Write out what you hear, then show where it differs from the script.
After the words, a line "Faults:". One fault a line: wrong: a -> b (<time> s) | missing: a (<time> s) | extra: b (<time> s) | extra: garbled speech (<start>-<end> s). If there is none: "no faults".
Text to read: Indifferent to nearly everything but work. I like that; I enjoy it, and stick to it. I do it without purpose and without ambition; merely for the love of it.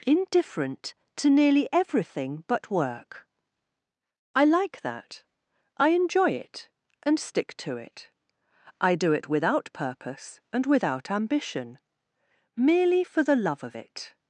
Indifferent to nearly everything but work. I like that; I enjoy it, and stick to it. I do it without purpose and without ambition; merely for the love of it.
Faults:
no faults